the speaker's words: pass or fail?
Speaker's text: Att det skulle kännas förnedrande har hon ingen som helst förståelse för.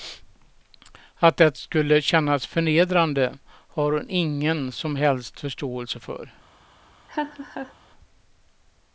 pass